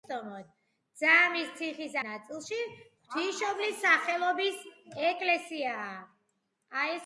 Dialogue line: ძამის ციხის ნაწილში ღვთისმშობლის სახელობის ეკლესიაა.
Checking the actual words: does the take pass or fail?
pass